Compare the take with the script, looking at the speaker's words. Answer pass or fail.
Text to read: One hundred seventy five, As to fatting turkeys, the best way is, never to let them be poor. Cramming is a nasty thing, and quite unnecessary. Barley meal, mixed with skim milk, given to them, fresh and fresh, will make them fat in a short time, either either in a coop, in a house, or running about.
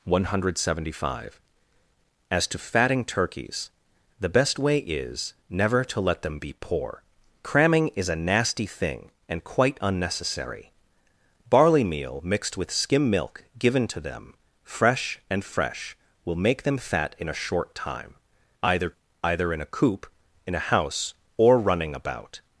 pass